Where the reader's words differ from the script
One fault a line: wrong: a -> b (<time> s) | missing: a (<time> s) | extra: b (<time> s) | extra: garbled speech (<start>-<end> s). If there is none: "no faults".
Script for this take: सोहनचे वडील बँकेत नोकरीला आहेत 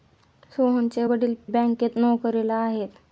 no faults